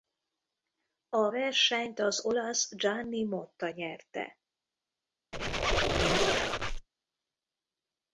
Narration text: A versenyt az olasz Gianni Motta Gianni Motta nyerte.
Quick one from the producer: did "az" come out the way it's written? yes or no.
yes